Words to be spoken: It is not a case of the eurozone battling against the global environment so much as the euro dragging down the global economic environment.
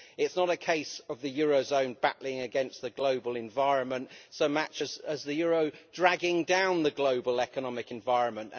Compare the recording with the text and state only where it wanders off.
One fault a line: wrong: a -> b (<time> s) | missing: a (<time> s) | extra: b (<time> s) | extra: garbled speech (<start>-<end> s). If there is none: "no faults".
no faults